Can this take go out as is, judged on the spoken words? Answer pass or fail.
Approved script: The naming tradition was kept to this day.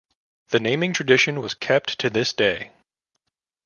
pass